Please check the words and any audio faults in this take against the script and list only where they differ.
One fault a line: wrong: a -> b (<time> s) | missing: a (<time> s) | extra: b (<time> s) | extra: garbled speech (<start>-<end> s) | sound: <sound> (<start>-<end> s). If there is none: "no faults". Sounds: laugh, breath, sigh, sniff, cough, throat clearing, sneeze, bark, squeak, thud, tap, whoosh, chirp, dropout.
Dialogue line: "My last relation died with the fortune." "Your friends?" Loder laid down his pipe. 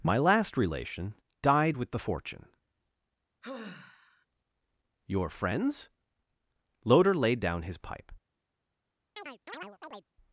sound: sigh (3.4-4.3 s)
sound: chirp (9.2-10.1 s)